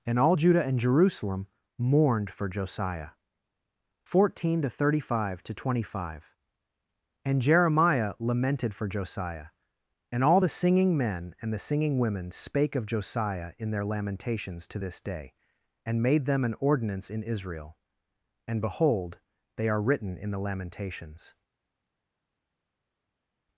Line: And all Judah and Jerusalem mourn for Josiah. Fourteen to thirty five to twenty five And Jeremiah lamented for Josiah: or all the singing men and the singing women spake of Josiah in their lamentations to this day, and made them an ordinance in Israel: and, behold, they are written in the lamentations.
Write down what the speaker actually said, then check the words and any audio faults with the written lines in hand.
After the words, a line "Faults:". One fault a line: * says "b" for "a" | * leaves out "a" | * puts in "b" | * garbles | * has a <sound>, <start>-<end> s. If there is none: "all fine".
And all Judah and Jerusalem mourned for Josiah. Fourteen to thirty five to twenty five And Jeremiah lamented for Josiah: and all the singing men and the singing women spake of Josiah in their lamentations to this day, and made them an ordinance in Israel: and, behold, they are written in the lamentations.
Faults:
* says "mourned" for "mourn"
* says "and" for "or"